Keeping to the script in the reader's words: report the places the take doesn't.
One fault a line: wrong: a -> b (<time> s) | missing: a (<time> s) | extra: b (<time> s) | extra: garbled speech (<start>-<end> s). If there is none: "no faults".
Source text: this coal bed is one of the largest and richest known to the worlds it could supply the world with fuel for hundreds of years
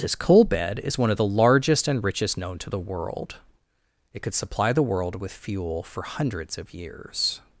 wrong: worlds -> world (2.8 s)